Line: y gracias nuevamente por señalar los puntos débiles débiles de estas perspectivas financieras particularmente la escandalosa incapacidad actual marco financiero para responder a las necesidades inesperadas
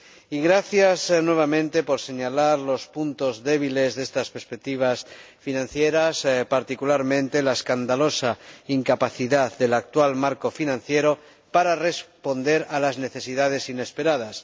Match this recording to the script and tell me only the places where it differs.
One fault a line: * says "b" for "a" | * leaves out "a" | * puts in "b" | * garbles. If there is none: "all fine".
* leaves out "débiles"
* puts in "del"